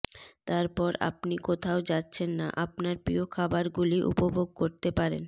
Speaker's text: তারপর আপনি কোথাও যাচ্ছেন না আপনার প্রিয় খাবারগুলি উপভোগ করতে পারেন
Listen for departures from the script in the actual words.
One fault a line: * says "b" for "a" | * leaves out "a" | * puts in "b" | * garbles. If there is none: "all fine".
all fine